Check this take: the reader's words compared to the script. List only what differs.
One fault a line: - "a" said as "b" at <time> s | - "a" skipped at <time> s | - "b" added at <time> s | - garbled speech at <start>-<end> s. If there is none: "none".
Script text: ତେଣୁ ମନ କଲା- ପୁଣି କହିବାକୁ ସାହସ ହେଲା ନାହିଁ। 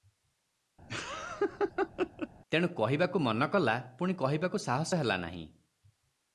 - "କହିବାକୁ" added at 2.7 s